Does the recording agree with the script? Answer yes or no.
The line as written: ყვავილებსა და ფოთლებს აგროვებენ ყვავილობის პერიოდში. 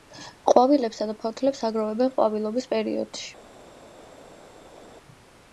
yes